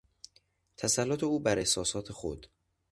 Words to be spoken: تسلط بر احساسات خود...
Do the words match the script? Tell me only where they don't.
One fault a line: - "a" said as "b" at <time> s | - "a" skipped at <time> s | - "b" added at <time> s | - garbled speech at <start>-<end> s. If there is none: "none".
- "او" added at 1.2 s